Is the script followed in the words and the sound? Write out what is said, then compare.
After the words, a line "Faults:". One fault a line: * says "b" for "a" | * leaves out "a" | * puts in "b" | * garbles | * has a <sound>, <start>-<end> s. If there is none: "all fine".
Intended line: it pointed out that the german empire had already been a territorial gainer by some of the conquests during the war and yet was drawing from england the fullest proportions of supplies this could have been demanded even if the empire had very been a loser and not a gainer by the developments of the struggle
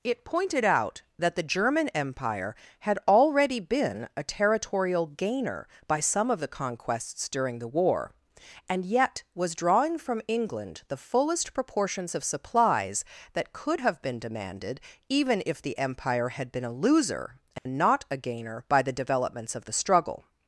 it pointed out that the german empire had already been a territorial gainer by some of the conquests during the war and yet was drawing from england the fullest proportions of supplies that could have been demanded even if the empire had been a loser and not a gainer by the developments of the struggle
Faults:
* says "that" for "this"
* leaves out "very"
* has a dropout, 17.6-17.7 s